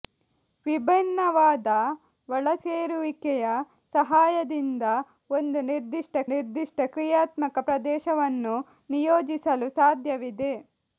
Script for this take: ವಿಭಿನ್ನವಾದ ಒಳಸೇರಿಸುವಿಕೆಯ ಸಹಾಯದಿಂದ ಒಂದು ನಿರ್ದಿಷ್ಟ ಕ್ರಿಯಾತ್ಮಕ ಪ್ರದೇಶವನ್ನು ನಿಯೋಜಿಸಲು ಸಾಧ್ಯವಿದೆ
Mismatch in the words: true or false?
true